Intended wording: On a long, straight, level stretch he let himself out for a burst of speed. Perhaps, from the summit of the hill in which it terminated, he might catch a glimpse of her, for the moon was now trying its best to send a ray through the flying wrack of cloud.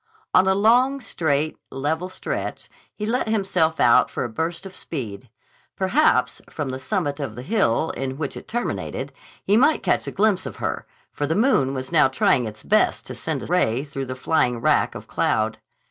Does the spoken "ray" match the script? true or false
true